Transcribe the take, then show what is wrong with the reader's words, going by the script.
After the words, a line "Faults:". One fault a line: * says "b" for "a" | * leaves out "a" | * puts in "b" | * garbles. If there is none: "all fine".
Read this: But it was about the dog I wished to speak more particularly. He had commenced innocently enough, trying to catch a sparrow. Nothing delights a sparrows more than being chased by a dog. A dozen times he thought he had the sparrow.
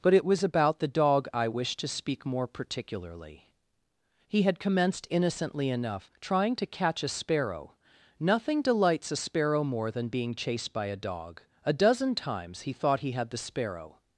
But it was about the dog I wished to speak more particularly. He had commenced innocently enough, trying to catch a sparrow. Nothing delights a sparrow more than being chased by a dog. A dozen times he thought he had the sparrow.
Faults:
* says "sparrow" for "sparrows"